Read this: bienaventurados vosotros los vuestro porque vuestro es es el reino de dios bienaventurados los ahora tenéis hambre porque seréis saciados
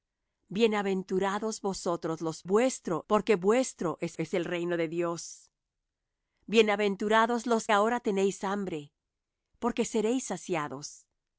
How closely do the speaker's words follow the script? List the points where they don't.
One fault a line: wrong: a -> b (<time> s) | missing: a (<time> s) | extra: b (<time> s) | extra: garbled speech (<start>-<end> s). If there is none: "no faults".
no faults